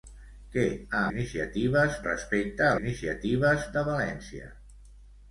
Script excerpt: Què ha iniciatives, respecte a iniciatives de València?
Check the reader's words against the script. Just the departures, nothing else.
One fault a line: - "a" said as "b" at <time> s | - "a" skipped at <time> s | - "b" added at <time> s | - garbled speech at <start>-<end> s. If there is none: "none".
none